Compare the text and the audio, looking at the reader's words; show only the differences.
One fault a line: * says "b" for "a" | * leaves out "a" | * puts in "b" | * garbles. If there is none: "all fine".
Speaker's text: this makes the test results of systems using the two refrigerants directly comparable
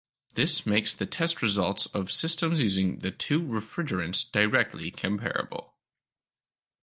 all fine